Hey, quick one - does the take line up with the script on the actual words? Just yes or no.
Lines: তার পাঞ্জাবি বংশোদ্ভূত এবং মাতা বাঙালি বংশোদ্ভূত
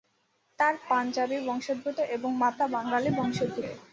yes